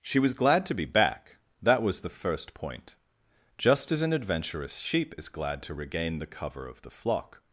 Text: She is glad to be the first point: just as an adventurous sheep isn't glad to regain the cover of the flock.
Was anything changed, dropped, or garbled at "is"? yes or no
yes